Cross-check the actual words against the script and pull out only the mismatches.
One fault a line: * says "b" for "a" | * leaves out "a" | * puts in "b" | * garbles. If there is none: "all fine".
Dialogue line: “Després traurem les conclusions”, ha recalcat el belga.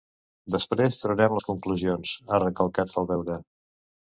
all fine